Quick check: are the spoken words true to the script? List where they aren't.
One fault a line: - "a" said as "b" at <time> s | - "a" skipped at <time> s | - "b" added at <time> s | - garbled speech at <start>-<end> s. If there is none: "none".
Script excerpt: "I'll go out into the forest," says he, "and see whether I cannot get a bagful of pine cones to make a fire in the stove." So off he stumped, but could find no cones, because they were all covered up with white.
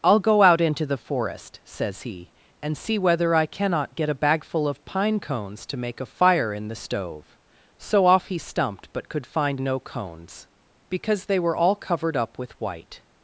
none